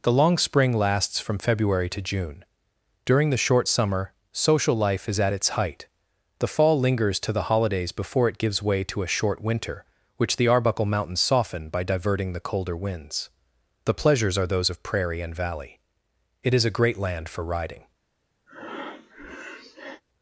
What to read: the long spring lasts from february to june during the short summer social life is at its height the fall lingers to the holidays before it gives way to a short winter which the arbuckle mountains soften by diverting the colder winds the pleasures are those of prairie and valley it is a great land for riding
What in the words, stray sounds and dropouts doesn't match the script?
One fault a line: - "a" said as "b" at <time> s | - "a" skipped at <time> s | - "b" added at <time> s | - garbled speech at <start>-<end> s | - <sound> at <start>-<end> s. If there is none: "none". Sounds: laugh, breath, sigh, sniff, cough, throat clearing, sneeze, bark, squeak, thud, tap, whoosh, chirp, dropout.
- breath at 18.5-20.0 s